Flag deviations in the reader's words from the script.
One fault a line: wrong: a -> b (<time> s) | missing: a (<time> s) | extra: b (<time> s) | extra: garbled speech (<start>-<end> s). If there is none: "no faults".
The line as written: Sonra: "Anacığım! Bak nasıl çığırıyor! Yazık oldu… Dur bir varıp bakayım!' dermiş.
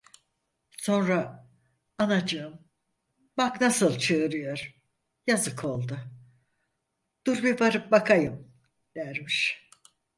no faults